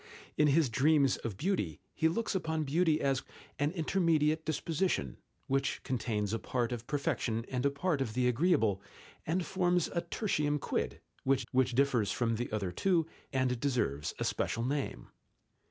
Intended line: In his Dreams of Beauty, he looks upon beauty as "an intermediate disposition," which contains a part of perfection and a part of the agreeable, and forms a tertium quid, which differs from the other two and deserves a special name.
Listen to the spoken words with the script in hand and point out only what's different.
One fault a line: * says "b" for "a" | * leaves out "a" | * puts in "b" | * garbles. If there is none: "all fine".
* puts in "which"